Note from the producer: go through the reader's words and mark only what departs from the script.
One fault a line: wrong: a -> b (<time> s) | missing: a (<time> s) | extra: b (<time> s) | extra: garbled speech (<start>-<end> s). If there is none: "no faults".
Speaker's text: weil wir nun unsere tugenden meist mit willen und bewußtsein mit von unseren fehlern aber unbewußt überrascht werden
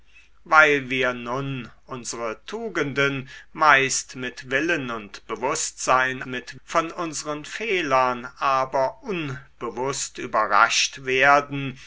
no faults